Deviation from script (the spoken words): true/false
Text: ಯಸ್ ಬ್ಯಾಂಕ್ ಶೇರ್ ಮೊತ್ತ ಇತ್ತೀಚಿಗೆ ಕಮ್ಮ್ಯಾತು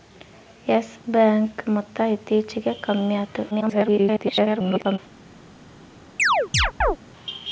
true